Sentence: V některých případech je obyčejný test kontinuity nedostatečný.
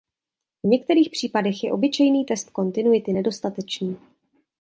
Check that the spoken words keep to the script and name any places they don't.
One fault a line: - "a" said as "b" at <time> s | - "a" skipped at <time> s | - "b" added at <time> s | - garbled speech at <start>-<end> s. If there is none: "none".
none